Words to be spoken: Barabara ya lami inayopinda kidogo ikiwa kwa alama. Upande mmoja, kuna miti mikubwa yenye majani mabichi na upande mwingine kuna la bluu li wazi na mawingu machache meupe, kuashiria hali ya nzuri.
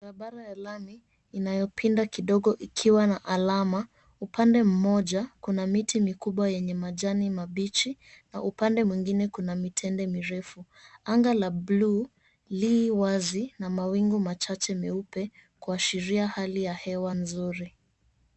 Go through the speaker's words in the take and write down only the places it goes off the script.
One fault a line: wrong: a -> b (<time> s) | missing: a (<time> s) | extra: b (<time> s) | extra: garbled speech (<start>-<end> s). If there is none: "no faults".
wrong: kwa -> na (3.1 s)
extra: mitende mirefu Anga (9.6 s)
extra: hewa (16.7 s)